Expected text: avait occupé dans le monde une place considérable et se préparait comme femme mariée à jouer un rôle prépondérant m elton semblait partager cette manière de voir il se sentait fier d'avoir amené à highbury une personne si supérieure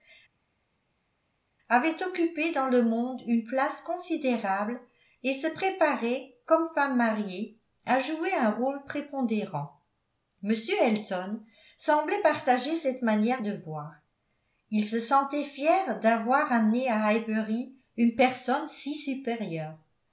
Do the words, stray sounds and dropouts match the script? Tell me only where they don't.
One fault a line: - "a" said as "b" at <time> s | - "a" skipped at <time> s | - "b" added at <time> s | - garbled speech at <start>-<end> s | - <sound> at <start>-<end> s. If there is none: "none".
none